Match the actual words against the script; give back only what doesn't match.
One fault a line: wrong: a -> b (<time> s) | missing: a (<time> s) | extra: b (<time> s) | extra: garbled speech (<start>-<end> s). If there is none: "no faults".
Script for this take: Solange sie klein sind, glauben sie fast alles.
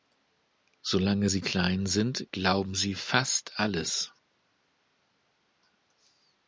no faults